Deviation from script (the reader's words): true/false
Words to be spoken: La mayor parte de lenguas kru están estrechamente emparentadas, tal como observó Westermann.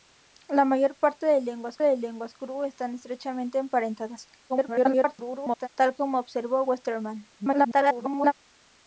true